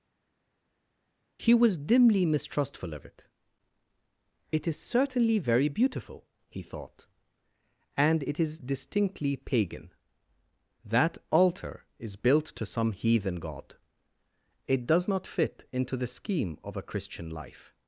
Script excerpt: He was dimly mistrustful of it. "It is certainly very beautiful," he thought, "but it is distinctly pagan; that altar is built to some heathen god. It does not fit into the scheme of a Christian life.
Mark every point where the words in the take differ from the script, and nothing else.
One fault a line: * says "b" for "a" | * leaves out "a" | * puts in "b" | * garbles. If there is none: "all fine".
* says "and" for "but"